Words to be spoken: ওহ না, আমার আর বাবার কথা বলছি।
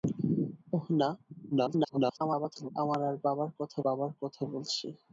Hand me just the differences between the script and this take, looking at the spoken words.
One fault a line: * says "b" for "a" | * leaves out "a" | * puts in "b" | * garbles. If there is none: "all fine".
* garbles
* puts in "বাবার কথা"